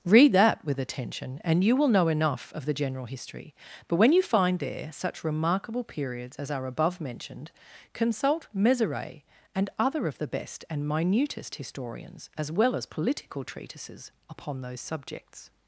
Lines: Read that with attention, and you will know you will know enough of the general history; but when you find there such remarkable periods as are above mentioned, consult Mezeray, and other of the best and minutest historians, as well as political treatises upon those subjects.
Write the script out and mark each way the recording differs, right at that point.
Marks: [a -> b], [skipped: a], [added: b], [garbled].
Read that with attention, and you will know [skipped: you will know] enough of the general history; but when you find there such remarkable periods as are above mentioned, consult Mezeray, and other of the best and minutest historians, as well as political treatises upon those subjects.